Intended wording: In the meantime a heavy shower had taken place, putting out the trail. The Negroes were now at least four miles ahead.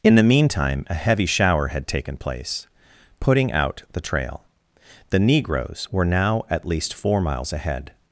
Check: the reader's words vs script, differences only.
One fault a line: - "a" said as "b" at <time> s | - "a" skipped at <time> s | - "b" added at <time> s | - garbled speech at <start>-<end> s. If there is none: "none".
none